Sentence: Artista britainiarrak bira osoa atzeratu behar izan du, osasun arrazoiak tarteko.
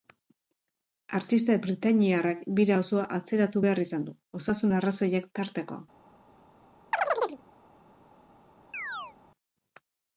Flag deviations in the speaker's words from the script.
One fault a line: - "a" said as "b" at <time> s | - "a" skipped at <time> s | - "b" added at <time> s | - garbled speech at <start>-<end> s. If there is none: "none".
none